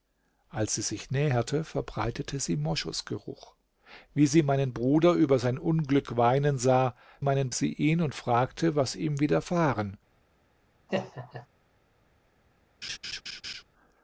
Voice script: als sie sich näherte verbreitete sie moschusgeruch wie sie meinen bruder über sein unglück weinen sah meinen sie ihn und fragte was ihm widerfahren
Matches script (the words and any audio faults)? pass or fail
fail